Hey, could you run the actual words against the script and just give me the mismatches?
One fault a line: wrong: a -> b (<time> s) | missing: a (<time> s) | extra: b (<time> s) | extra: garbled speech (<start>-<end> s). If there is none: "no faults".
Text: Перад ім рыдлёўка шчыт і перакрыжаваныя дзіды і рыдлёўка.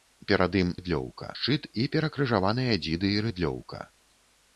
no faults